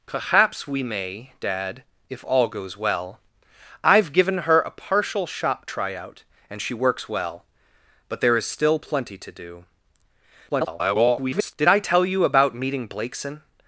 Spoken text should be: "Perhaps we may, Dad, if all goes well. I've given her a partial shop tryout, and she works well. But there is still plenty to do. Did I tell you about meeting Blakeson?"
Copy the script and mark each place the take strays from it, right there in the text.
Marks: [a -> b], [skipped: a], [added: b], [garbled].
"Perhaps we may, Dad, if all goes well. I've given her a partial shop tryout, and she works well. But there is still plenty to do. [garbled] Did I tell you about meeting Blakeson?"